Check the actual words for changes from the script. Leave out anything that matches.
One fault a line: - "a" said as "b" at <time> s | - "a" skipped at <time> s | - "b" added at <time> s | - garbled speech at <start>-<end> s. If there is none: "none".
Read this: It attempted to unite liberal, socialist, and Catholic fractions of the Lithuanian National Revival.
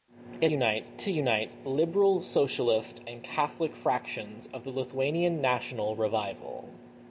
- "attempted" said as "unite" at 0.5 s